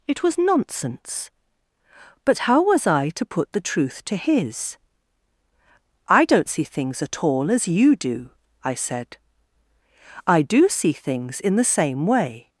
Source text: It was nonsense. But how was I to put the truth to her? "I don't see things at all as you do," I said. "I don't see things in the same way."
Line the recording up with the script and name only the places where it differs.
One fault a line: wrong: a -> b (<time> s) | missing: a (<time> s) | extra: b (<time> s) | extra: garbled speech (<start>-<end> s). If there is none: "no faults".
wrong: her -> his (4.2 s)
wrong: don't -> do (10.4 s)